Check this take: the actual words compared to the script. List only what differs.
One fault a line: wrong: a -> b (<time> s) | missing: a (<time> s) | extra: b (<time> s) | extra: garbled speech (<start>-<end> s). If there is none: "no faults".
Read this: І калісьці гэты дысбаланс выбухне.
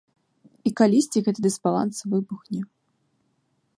no faults